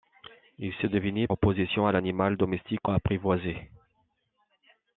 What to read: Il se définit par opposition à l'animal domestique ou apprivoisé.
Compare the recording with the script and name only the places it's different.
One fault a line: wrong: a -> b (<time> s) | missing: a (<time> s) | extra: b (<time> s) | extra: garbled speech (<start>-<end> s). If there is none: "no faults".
missing: par (1.3 s)
missing: ou (2.9 s)